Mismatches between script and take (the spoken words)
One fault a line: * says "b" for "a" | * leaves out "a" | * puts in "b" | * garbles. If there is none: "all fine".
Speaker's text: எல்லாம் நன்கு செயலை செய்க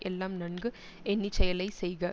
* puts in "எண்ணி"